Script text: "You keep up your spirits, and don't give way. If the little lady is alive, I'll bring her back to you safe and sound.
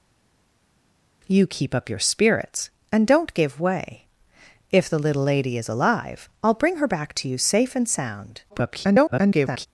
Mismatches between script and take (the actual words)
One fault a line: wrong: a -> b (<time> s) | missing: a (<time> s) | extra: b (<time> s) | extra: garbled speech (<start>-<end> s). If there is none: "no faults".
extra: garbled speech (8.5-9.7 s)